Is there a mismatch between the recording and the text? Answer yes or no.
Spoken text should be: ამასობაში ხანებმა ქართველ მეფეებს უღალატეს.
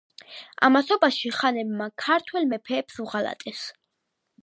no